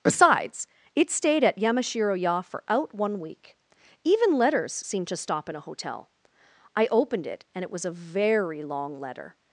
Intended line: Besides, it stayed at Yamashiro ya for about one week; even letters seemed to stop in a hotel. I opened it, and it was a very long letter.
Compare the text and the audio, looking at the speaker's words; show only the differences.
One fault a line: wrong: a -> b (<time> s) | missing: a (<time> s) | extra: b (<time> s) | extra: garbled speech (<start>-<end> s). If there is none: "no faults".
wrong: about -> out (2.7 s)